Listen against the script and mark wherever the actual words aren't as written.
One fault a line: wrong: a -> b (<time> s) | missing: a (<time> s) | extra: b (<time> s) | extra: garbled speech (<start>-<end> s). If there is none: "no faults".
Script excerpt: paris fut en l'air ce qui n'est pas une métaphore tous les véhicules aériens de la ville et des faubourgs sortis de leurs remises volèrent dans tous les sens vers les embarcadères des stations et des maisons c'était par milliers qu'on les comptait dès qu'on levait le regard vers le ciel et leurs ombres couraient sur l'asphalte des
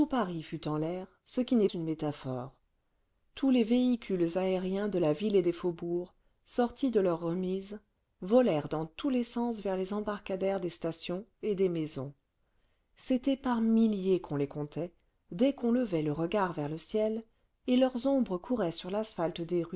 missing: pas (1.7 s)